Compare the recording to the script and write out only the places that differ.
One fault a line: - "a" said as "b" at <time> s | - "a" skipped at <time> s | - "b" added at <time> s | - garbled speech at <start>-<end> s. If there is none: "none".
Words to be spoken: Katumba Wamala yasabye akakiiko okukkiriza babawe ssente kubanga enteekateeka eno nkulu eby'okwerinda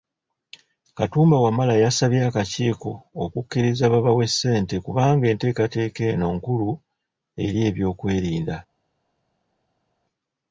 - "eri" added at 7.5 s